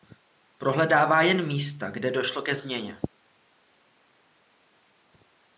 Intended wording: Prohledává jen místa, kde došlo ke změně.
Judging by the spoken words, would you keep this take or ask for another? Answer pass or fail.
pass